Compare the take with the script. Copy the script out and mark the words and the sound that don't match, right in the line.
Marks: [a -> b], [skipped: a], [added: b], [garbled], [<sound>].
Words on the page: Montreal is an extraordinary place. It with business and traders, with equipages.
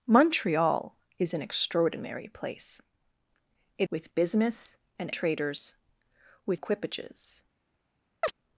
Montreal is an extraordinary place. It with business and traders, with equipages. [chirp]